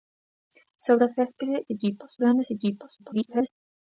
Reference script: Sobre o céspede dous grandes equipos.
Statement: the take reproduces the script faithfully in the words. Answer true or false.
false